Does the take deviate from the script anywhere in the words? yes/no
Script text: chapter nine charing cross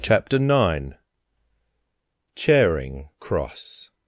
no